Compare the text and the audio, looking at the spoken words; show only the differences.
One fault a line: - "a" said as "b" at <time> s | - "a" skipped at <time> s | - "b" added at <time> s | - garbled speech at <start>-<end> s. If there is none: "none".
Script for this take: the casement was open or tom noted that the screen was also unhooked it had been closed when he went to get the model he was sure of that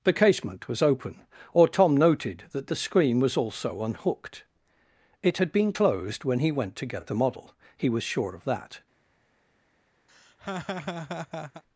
none